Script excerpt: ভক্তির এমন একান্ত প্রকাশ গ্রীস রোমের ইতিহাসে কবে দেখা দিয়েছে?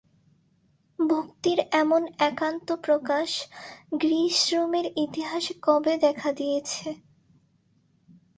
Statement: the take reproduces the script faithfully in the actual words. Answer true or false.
true